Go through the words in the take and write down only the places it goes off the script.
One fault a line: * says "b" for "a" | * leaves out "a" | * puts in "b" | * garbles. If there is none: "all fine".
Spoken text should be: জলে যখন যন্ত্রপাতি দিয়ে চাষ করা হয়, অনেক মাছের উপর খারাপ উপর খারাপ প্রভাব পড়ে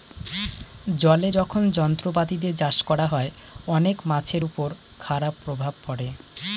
* leaves out "উপর খারাপ"